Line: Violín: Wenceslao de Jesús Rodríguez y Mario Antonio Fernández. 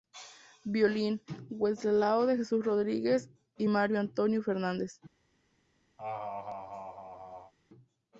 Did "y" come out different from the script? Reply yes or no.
no